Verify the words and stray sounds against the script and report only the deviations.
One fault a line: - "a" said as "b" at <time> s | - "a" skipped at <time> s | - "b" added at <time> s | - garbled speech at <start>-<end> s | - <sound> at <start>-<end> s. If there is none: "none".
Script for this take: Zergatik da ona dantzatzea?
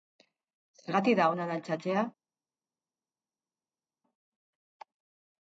none